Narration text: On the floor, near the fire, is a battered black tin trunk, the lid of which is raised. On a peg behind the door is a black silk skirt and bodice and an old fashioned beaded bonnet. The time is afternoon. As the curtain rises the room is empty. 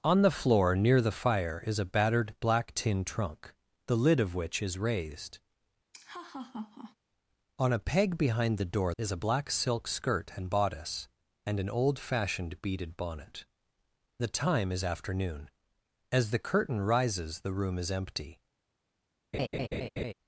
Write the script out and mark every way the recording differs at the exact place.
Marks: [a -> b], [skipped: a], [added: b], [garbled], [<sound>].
On the floor, near the fire, is a battered black tin trunk, the lid of which is raised. [laugh] On a peg behind the door is a black silk skirt and bodice and an old fashioned beaded bonnet. The time is afternoon. As the curtain rises the room is empty. [laugh]